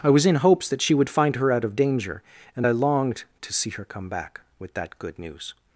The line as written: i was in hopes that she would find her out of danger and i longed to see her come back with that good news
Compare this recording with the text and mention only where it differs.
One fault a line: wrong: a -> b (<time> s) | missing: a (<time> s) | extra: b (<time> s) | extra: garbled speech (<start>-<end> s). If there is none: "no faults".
no faults